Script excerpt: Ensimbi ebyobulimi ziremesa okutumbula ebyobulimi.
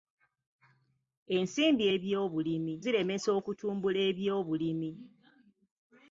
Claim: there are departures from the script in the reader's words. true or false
false